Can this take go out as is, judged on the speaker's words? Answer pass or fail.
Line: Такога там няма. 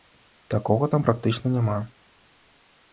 fail